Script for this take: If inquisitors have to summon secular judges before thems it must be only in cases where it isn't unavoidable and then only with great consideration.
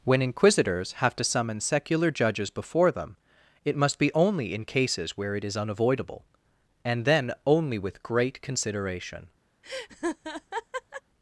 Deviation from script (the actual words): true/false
true